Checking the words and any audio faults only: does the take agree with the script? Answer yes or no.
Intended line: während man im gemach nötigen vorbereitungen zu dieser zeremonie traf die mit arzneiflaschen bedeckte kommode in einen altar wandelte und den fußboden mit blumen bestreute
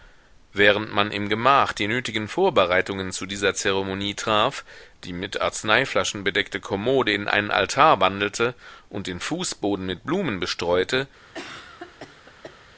no